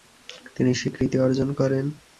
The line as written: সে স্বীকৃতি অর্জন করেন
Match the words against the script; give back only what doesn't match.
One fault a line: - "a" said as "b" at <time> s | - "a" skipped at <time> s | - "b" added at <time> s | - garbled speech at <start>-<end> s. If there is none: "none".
- "সে" said as "তিনি" at 0.6 s